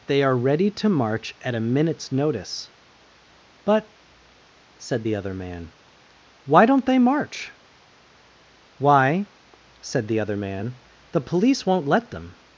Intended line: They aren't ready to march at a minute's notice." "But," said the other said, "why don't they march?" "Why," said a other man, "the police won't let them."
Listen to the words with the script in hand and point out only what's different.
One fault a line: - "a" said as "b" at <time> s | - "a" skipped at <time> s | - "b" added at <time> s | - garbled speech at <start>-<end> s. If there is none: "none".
- "aren't" said as "are" at 0.2 s
- "said" said as "man" at 5.3 s
- "a" said as "the" at 10.1 s